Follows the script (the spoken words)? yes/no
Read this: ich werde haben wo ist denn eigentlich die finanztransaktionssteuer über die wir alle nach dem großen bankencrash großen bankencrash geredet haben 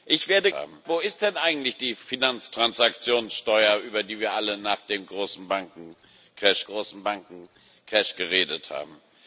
yes